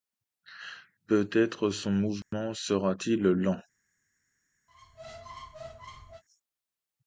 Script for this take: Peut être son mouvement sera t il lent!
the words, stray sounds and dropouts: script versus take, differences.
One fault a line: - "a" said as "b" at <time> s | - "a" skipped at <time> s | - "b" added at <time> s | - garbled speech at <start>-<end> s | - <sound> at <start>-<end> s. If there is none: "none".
- dropout at 2.2-2.3 s
- squeak at 4.7-6.2 s